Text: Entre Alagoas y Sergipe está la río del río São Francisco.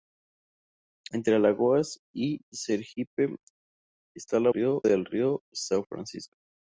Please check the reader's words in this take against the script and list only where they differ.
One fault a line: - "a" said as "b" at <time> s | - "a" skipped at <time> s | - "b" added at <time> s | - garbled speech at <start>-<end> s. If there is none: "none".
none